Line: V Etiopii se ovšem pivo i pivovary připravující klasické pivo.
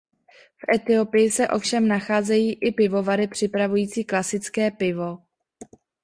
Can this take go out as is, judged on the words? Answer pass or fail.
fail